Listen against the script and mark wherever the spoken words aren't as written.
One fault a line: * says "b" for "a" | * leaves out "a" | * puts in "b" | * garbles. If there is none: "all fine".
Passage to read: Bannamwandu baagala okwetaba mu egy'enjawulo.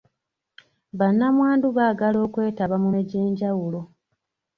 all fine